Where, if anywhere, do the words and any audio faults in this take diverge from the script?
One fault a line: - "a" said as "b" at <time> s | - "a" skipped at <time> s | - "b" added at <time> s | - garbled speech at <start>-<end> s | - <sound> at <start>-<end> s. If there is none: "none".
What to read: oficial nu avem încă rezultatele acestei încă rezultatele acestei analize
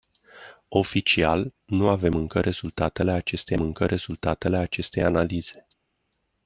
none